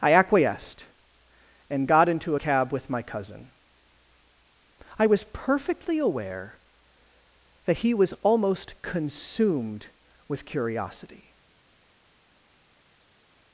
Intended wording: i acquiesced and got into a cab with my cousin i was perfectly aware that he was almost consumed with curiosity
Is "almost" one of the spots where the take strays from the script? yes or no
no